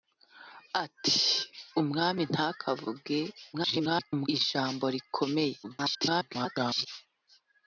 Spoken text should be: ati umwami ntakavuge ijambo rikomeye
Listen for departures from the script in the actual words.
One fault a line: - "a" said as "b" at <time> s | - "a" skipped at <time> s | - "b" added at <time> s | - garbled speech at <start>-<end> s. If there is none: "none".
- garbled speech at 3.5-4.3 s
- garbled speech at 5.6-6.9 s